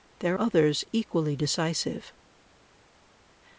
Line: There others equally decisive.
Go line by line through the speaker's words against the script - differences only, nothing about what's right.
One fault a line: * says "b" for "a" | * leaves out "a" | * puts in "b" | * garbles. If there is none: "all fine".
all fine